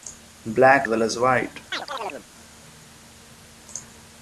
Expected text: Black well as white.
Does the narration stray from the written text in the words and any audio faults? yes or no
yes